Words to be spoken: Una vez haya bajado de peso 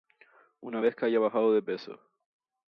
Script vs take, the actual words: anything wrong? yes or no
yes